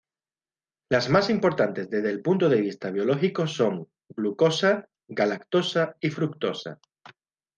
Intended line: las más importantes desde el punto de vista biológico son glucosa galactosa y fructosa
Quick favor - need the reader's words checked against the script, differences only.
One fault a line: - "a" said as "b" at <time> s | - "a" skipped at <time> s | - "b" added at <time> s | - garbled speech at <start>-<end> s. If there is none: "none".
none